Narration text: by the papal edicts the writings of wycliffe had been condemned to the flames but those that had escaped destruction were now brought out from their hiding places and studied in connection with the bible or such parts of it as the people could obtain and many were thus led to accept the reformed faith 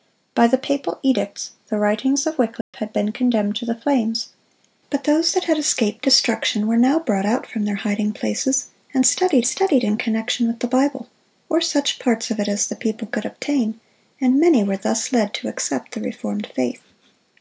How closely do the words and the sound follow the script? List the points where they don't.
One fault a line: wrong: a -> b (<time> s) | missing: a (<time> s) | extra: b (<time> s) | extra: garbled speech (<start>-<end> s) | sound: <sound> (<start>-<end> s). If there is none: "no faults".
sound: dropout (2.6-2.7 s)
extra: studied (9.5 s)